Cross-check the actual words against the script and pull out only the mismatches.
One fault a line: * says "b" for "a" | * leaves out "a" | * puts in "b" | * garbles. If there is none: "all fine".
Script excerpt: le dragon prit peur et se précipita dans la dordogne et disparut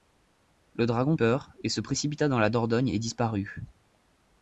* leaves out "prit"